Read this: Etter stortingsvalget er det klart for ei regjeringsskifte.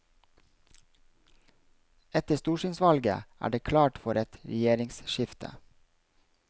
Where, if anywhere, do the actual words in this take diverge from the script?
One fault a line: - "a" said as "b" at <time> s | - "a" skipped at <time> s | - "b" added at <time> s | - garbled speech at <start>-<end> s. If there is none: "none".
- "ei" said as "et" at 4.2 s